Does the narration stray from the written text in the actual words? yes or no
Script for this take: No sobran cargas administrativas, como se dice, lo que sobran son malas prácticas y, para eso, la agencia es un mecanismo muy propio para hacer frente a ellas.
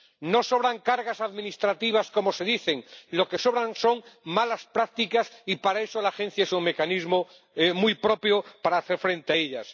no